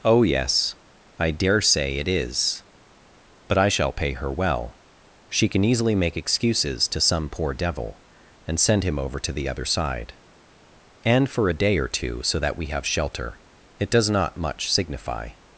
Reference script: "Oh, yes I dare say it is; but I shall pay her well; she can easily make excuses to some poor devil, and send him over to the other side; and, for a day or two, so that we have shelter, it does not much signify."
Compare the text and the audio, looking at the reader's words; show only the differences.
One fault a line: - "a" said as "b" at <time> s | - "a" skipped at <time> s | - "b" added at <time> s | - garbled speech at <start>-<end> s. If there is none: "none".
none